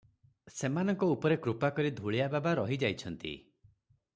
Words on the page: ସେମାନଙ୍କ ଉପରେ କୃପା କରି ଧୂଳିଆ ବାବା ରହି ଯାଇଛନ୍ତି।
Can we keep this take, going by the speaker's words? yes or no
yes